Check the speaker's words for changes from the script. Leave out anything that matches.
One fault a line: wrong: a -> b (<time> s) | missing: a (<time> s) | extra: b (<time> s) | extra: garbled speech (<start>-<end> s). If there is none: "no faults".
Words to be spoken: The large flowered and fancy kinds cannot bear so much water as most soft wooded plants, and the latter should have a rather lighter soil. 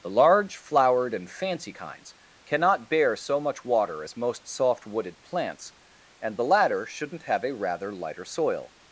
wrong: should -> shouldn't (6.9 s)